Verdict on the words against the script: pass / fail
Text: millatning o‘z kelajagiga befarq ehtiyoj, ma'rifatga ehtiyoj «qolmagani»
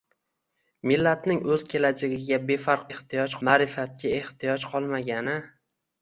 pass